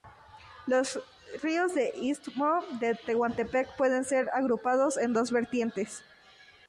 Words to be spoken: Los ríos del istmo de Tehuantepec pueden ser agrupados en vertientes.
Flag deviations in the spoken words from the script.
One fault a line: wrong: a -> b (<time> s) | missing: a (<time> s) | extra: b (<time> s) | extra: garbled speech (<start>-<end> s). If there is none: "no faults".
extra: dos (5.1 s)